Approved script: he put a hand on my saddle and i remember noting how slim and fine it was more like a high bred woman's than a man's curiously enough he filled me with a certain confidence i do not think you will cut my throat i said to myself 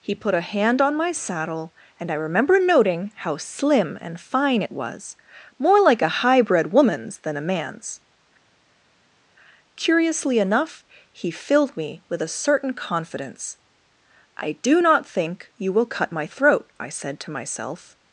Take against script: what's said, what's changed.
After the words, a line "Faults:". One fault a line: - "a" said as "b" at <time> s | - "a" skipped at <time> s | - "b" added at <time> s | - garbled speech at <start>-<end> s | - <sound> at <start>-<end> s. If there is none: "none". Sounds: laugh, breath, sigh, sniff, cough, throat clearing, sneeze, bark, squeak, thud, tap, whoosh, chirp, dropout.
he put a hand on my saddle and i remember noting how slim and fine it was more like a high bred woman's than a man's curiously enough he filled me with a certain confidence i do not think you will cut my throat i said to myself
Faults:
none